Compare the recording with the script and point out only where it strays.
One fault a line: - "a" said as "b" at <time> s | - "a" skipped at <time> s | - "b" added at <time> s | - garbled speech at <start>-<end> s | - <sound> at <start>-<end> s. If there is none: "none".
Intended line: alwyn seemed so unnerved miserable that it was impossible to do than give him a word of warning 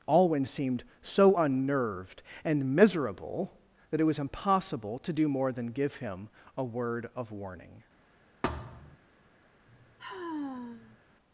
- "and" added at 2.4 s
- "more" added at 5.3 s
- thud at 8.4-9.0 s
- sigh at 9.7-11.0 s